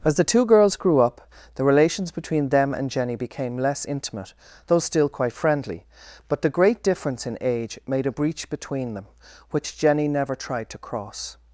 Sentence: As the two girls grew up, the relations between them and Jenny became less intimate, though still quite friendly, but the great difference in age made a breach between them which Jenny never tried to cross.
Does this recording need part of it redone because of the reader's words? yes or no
no